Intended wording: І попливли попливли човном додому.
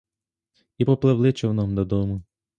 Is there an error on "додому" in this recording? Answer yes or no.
no